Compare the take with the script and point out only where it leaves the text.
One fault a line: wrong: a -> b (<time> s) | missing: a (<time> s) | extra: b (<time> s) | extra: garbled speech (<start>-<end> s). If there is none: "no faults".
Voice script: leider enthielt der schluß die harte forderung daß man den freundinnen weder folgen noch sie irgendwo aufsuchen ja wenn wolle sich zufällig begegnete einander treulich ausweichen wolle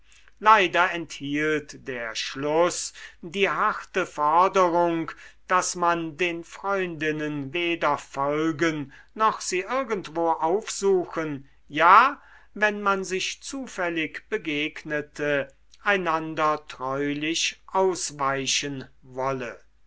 wrong: wolle -> man (12.8 s)